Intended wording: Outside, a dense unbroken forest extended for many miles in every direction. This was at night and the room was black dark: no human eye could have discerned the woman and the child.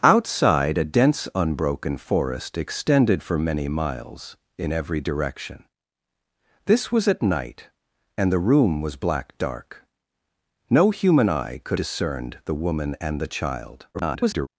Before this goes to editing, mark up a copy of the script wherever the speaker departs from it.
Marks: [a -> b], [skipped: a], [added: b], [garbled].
Outside, a dense unbroken forest extended for many miles in every direction. This was at night and the room was black dark: no human eye could [skipped: have] discerned the woman and the child. [garbled]